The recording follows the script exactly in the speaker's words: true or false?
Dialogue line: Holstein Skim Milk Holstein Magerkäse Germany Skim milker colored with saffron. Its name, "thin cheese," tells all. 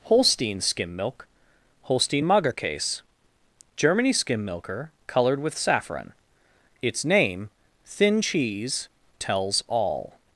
true